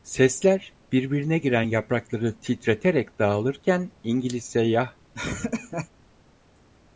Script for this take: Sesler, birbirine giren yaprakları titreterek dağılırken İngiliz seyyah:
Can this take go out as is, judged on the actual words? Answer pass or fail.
pass